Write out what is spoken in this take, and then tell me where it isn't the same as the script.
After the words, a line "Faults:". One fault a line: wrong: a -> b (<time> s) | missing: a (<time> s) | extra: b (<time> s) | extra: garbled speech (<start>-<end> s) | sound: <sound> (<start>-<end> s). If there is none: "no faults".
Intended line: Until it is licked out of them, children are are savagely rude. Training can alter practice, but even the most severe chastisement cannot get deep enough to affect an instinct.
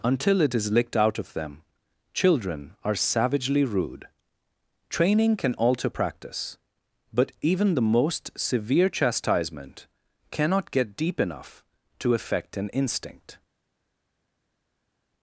Until it is licked out of them, children are savagely rude. Training can alter practice, but even the most severe chastisement cannot get deep enough to affect an instinct.
Faults:
missing: are (3.0 s)